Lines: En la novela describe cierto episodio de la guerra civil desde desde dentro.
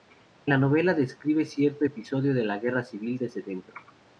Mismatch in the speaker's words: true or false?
true